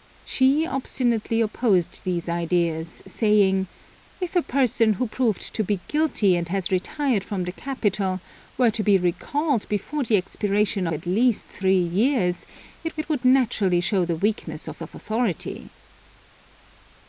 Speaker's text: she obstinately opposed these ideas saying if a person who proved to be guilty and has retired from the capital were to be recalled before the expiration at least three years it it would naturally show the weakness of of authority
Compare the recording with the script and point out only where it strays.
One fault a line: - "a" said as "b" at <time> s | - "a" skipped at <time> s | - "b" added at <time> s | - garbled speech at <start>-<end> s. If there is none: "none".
none